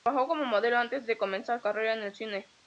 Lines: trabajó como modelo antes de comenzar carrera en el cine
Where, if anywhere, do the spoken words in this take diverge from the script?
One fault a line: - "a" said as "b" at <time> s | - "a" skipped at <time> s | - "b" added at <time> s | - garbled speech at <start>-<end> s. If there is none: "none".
none